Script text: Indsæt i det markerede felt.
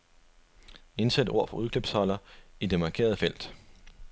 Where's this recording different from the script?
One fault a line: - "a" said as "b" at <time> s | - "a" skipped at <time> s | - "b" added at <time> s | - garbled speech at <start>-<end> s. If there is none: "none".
- "ord fra udklipsholder" added at 1.3 s